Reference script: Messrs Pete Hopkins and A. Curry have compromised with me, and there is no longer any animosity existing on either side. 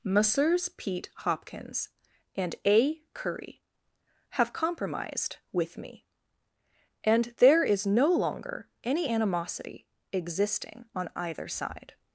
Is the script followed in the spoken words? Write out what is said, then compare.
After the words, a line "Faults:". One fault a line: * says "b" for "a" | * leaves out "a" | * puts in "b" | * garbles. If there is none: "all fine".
Messrs Pete Hopkins and A. Curry have compromised with me, and there is no longer any animosity existing on either side.
Faults:
all fine